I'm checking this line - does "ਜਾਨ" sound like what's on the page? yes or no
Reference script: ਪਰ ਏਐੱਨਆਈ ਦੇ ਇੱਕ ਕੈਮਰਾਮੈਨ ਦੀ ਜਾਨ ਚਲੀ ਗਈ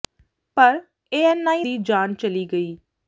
yes